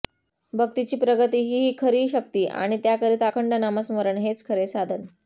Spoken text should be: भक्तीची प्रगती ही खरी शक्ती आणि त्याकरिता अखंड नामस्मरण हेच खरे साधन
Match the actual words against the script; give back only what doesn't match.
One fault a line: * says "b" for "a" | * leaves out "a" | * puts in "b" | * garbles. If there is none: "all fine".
all fine